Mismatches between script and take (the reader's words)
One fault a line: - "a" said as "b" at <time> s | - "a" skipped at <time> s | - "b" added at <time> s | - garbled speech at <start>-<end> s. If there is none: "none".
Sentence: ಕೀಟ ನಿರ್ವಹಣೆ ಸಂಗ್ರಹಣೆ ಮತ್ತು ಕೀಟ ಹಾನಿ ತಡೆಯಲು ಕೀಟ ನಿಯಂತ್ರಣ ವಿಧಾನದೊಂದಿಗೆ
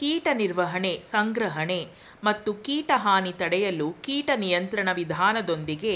none